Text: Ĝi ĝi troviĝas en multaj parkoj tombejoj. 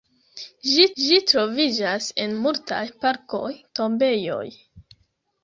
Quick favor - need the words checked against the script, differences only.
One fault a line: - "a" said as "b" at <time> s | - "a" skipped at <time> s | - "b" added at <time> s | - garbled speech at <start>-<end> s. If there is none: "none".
none